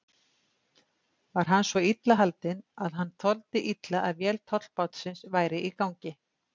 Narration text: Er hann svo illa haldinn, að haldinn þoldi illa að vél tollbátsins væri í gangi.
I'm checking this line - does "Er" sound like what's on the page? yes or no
no